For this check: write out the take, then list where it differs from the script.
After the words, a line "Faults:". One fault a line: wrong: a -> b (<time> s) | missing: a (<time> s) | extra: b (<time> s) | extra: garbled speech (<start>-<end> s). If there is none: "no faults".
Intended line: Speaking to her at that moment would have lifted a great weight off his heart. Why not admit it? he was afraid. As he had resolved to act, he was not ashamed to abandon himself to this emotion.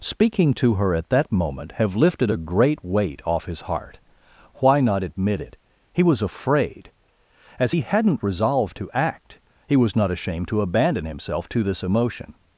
Speaking to her at that moment have lifted a great weight off his heart. Why not admit it? he was afraid. As he hadn't resolved to act, he was not ashamed to abandon himself to this emotion.
Faults:
missing: would (1.7 s)
wrong: had -> hadn't (7.8 s)